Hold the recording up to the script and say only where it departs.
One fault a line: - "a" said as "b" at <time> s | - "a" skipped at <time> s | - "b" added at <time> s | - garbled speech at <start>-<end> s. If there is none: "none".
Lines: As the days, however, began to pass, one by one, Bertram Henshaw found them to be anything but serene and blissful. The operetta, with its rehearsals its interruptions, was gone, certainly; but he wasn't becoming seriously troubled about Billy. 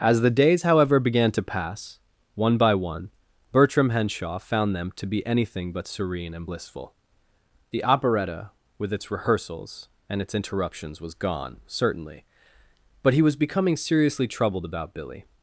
- "and" added at 10.1 s
- "wasn't" said as "was" at 13.2 s